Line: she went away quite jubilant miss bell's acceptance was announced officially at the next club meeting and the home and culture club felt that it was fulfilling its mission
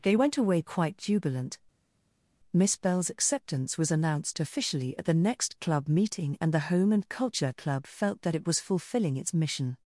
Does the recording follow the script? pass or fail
fail